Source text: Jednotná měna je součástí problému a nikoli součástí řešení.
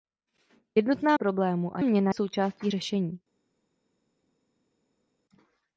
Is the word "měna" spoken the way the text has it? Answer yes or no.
no